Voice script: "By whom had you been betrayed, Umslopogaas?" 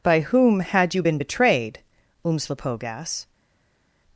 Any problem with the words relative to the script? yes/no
no